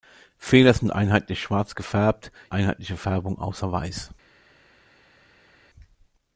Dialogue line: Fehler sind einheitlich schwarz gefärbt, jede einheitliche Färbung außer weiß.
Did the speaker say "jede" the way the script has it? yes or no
no